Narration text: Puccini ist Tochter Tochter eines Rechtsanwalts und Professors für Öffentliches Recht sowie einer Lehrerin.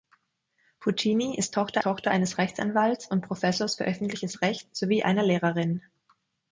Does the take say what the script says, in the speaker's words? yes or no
yes